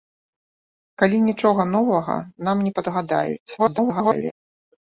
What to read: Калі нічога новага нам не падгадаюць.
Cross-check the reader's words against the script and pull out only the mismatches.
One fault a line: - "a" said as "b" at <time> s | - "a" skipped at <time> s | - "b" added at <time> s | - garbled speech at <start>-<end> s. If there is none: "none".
- garbled speech at 3.6-4.3 s